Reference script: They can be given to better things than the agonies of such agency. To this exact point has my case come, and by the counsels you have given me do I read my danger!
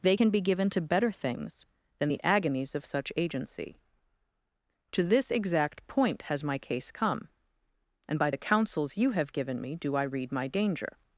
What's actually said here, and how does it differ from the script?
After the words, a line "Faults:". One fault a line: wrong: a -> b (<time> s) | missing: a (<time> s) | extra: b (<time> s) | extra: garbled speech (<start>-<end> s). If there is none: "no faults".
They can be given to better things than the agonies of such agency. To this exact point has my case come, and by the counsels you have given me do I read my danger!
Faults:
no faults